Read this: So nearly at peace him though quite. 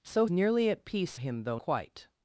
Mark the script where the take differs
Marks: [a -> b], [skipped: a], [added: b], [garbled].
So nearly at peace him though quite.